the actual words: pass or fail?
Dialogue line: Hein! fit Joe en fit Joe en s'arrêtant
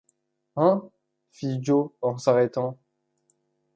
fail